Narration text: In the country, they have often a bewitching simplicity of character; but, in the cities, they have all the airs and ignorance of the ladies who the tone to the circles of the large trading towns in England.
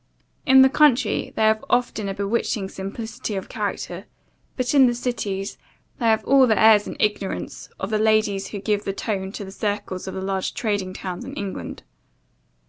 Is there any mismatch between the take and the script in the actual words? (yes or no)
yes